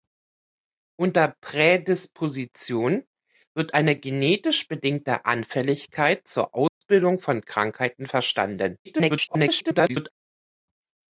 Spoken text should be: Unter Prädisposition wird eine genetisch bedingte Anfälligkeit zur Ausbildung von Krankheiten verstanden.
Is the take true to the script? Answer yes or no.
no